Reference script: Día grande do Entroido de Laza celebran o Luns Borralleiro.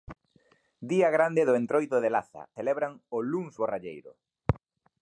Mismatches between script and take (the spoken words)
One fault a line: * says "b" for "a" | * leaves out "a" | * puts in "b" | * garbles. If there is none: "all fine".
all fine